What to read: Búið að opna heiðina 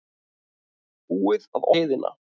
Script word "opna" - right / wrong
wrong